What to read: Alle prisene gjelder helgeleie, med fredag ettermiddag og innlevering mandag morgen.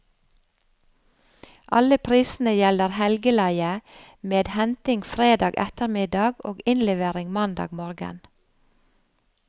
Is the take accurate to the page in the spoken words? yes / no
no